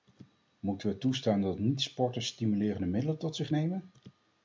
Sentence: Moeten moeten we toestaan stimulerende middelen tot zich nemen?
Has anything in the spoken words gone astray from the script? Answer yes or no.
yes